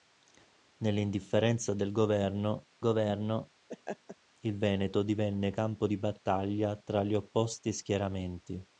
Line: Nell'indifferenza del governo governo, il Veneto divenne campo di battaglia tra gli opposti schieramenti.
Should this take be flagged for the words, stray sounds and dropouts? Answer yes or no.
yes